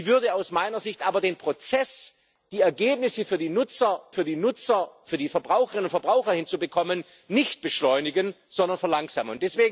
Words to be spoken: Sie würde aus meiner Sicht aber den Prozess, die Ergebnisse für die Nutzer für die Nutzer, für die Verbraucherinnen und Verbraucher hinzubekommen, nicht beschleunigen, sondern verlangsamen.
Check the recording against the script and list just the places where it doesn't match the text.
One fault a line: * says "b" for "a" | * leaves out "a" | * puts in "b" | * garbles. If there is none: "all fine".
all fine